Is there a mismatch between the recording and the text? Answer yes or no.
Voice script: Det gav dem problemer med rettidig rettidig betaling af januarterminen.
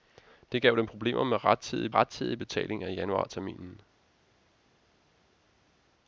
no